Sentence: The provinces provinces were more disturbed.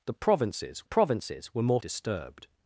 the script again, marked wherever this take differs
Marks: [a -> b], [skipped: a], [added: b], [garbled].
The provinces provinces were more disturbed.